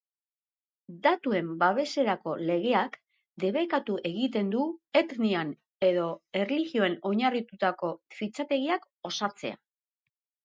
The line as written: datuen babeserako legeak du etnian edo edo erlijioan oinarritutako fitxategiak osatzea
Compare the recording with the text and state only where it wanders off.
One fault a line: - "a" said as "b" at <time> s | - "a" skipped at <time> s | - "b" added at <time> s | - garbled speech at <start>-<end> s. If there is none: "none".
- "debekatu egiten" added at 3.4 s
- "edo" skipped at 6.1 s